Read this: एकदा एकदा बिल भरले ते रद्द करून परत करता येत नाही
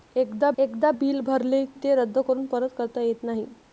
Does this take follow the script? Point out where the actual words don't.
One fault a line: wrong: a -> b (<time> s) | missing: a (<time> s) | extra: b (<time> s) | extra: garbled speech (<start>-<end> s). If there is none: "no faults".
no faults